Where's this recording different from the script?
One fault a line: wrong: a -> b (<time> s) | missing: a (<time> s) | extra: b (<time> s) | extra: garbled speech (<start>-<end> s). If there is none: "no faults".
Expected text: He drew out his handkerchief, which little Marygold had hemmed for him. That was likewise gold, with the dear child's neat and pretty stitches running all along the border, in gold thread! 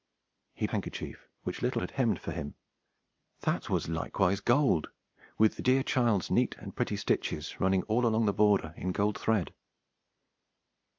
missing: drew out his (0.7 s)
missing: Marygold (1.8 s)